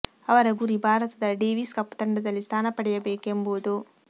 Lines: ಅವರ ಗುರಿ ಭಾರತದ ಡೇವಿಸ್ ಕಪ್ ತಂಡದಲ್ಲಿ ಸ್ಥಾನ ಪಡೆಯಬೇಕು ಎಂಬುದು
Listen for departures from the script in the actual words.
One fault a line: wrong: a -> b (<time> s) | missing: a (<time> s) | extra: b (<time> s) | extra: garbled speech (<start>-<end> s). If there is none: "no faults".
no faults